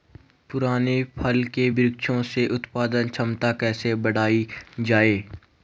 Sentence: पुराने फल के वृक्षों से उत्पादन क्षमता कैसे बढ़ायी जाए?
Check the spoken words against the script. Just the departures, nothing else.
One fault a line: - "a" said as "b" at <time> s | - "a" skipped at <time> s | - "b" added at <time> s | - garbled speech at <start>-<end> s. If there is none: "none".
none